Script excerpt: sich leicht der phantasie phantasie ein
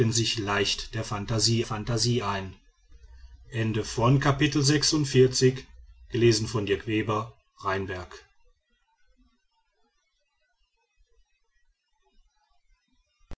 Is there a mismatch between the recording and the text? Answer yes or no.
no